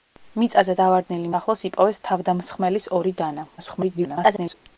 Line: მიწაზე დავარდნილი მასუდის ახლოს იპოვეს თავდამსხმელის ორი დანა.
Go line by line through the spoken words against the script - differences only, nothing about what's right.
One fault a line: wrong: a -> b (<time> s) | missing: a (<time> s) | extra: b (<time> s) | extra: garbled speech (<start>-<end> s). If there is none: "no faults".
missing: მასუდის (1.3 s)
extra: garbled speech (3.6-4.6 s)